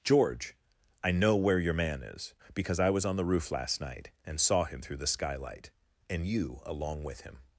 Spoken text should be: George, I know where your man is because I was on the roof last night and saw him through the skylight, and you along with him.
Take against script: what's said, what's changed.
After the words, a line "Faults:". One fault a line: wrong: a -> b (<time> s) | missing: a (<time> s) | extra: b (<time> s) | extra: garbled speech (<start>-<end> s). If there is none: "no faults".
George, I know where your man is because I was on the roof last night and saw him through the skylight, and you along with him.
Faults:
no faults